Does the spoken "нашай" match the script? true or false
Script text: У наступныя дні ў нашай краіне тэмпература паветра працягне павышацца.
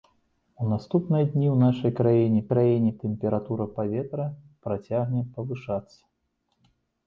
true